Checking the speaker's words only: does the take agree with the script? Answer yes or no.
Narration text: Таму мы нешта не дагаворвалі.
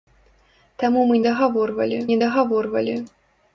no